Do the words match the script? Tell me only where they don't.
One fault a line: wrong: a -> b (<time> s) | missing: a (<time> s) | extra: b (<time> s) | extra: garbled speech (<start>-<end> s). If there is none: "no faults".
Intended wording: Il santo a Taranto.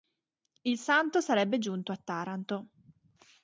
extra: sarebbe giunto (1.2 s)